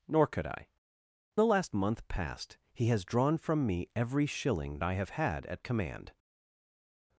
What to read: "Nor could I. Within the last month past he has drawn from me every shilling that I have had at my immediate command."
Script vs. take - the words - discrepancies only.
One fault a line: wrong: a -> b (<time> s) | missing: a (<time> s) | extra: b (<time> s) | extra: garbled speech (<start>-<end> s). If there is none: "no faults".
missing: Within (0.7 s)
missing: that (4.8 s)
missing: my immediate (5.6 s)